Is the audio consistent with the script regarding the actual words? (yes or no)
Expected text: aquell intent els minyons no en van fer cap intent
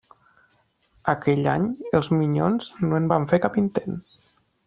no